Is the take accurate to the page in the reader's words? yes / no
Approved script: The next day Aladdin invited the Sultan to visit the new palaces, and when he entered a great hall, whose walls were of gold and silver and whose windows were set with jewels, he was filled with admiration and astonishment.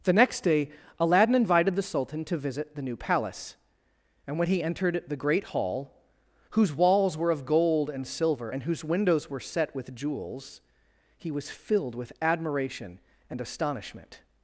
no